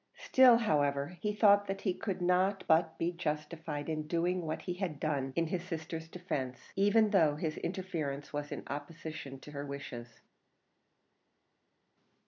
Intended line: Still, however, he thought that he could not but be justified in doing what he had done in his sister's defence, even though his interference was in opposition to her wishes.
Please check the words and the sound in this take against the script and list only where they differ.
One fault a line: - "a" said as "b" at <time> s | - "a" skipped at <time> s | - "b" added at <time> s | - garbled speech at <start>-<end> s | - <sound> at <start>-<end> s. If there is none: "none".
none